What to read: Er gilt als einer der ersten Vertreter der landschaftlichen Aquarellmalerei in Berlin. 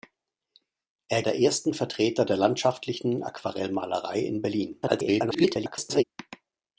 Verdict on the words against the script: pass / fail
fail